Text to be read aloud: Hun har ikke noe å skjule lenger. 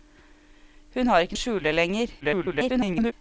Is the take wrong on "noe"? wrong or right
wrong